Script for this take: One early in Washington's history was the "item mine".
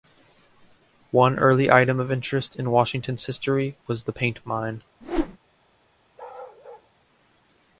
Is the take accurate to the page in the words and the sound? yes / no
no